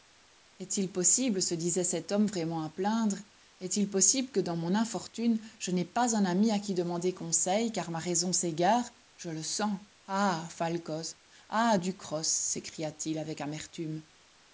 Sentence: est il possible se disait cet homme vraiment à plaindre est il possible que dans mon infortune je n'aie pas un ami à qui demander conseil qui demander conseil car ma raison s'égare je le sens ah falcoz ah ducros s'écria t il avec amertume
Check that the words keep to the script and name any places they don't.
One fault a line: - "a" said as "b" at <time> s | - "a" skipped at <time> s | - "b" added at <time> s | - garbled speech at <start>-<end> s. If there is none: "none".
- "qui demander conseil" skipped at 7.7 s